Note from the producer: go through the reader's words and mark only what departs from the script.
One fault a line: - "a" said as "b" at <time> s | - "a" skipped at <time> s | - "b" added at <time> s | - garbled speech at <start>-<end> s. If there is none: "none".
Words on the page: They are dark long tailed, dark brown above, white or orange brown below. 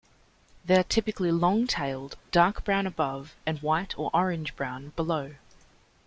- "dark" said as "typically" at 0.8 s
- "and" added at 3.5 s